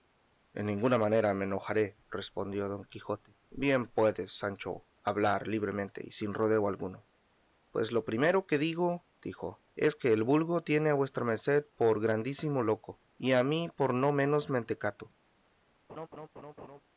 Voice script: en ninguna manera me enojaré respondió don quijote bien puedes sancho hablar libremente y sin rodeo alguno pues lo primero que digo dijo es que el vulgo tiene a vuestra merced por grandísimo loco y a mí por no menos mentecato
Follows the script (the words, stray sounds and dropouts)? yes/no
no